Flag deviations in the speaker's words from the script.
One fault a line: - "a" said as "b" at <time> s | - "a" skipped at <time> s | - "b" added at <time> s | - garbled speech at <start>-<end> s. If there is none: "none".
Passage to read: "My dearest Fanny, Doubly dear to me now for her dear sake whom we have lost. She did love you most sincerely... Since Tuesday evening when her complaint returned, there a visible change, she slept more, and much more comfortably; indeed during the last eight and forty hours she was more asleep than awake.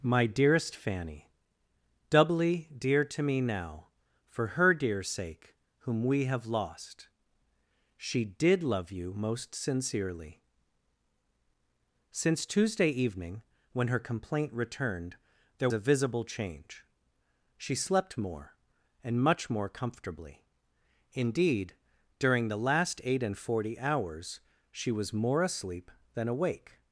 none